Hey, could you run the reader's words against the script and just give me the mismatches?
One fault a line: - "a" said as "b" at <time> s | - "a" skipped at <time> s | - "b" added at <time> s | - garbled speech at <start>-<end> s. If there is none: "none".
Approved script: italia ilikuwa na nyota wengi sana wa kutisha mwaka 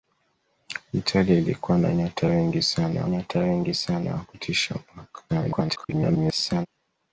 - "nyota wengi sana" added at 3.1 s
- garbled speech at 5.3-6.7 s